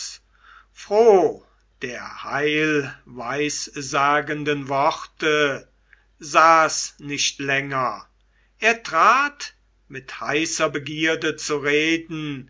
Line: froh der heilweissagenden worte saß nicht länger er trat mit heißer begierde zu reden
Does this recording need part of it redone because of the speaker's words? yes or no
no